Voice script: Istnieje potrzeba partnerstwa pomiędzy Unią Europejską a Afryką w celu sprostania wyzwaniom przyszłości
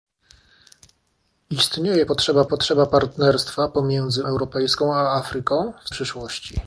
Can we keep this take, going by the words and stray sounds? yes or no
no